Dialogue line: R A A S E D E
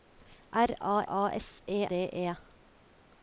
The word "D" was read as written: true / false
true